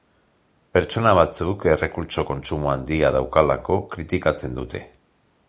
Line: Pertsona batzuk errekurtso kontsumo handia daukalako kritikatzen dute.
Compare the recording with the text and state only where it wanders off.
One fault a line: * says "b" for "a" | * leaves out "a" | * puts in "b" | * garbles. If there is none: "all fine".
all fine